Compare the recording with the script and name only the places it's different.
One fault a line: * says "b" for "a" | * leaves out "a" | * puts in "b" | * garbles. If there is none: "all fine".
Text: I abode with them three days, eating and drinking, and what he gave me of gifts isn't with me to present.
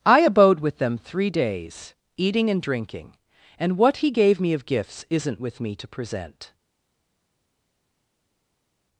all fine